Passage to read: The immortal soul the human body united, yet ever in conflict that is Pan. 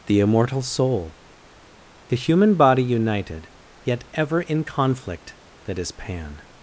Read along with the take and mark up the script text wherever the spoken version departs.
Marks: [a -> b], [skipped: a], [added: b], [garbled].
The immortal soul the human body united, yet ever in conflict that is Pan.